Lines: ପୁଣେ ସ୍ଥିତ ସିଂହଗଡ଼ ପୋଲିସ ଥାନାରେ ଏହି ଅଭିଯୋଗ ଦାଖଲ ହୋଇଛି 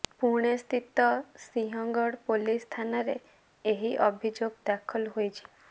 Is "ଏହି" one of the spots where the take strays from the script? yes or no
no